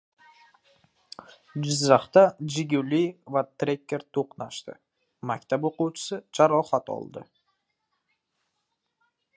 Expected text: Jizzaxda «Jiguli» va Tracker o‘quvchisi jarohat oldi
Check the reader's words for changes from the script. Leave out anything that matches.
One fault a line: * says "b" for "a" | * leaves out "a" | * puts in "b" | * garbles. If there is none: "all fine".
* puts in "to‘qnashdi Maktab"